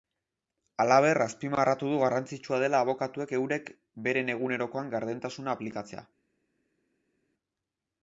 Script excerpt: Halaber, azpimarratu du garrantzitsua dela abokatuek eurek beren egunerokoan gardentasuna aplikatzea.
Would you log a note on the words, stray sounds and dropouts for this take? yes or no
no